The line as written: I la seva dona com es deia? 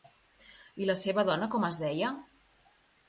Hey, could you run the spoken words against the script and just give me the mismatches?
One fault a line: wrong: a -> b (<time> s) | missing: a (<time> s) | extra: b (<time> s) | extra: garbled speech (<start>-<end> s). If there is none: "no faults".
no faults